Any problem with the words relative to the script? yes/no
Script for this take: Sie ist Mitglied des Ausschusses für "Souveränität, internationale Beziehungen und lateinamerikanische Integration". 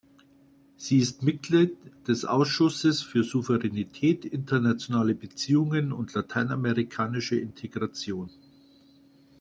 no